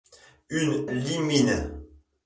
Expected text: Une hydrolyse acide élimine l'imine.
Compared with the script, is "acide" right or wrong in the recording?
wrong